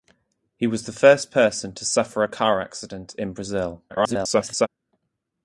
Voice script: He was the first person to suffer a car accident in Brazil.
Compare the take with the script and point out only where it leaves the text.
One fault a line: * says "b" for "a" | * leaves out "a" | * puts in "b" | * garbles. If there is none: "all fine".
* garbles